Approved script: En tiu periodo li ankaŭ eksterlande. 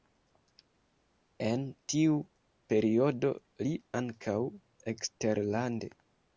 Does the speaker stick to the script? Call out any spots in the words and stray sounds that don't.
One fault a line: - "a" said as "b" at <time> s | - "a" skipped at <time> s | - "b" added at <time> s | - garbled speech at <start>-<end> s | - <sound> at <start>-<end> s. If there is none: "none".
none